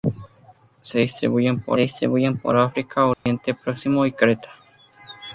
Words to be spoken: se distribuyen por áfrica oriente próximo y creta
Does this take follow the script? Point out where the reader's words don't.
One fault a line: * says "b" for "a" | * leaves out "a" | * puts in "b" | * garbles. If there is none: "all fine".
* puts in "distribuyen por"